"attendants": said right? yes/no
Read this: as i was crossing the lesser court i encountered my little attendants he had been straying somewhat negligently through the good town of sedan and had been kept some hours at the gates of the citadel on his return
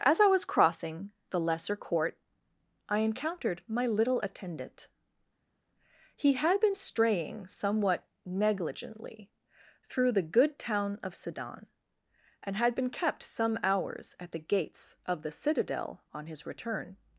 no